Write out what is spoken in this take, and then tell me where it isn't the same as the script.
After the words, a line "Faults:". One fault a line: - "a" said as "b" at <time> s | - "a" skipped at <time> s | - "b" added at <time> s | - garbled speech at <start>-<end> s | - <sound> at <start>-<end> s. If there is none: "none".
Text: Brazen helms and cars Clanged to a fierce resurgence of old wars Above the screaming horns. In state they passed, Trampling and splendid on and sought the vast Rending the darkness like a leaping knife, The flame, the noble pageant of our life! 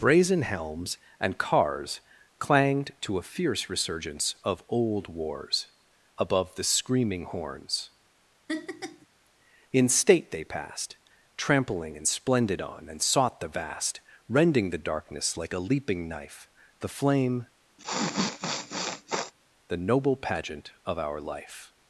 Brazen helms and cars Clanged to a fierce resurgence of old wars Above the screaming horns. In state they passed, Trampling and splendid on and sought the vast Rending the darkness like a leaping knife, The flame, the noble pageant of our life!
Faults:
- laugh at 8.5-9.1 s
- sniff at 17.8-19.3 s